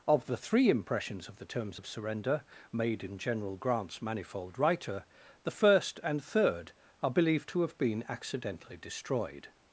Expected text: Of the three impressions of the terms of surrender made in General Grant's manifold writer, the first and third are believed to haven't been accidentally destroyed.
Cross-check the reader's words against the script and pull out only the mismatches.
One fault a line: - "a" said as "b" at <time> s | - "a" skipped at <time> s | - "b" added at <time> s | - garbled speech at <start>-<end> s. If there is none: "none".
- "haven't" said as "have" at 7.6 s